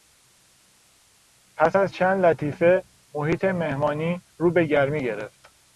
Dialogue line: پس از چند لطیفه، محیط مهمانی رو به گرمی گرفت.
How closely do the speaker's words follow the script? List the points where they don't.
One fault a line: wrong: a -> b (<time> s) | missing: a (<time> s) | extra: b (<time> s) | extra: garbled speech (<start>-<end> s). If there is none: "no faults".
no faults